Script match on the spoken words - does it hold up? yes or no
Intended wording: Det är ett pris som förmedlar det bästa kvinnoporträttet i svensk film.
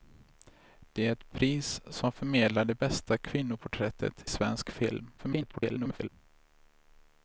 no